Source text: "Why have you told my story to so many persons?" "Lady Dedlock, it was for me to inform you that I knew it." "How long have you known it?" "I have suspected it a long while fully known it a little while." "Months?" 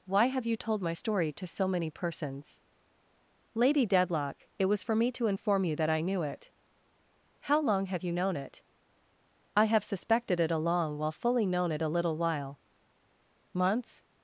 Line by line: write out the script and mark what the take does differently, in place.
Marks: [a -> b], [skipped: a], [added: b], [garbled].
"Why have you told my story to so many persons?" "Lady Dedlock, it was for me to inform you that I knew it." "How long have you known it?" "I have suspected it a long while fully known it a little while." "Months?"